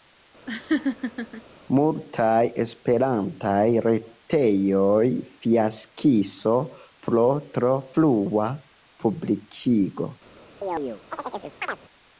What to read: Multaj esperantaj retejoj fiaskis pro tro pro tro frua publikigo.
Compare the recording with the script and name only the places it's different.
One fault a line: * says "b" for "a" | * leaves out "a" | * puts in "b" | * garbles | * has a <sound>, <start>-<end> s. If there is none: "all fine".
* has a laugh, 0.5-1.4 s
* leaves out "pro tro"
* has a chirp, 10.6-11.8 s